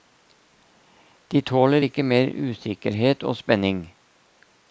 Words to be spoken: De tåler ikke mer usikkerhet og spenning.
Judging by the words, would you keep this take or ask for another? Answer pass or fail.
pass